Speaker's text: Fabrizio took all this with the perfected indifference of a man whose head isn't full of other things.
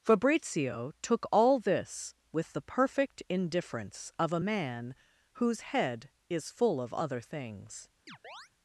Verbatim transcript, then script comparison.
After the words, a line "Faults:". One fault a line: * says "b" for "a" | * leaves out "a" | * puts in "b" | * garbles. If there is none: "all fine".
Fabrizio took all this with the perfect indifference of a man whose head is full of other things.
Faults:
* says "perfect" for "perfected"
* says "is" for "isn't"